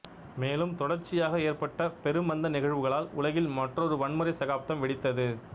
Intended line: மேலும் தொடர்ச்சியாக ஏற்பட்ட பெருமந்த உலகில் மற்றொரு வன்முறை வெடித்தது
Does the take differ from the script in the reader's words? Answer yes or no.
yes